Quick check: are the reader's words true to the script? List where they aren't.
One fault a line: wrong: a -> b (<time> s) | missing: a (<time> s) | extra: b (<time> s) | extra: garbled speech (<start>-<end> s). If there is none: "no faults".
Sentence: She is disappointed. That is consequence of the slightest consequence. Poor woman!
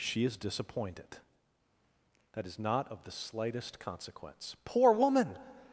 wrong: consequence -> not (2.6 s)